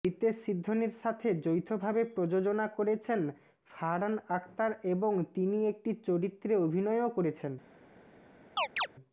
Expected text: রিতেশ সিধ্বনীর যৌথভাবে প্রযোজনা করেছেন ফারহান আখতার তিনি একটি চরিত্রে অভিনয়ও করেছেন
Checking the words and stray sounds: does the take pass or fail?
fail